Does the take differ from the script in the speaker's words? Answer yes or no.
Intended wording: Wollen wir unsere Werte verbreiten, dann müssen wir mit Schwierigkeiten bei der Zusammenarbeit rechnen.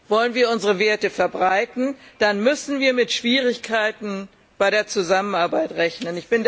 no